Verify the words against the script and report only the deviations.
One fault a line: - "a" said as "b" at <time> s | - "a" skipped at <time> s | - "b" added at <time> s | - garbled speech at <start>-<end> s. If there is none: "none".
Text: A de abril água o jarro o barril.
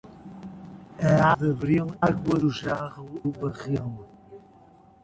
none